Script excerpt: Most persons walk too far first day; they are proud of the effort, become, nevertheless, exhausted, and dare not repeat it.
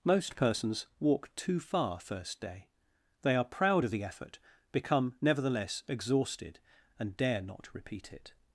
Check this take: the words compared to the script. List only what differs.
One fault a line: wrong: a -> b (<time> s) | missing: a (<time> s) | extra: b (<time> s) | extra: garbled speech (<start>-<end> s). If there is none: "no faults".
no faults